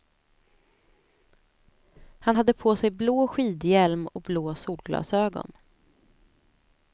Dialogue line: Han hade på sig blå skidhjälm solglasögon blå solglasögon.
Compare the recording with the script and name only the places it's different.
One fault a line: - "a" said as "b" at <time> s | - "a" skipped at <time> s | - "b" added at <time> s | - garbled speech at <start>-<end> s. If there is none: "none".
- "solglasögon" said as "och" at 4.1 s